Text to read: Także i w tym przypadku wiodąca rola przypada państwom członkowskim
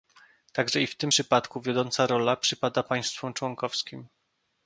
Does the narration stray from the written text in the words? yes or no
no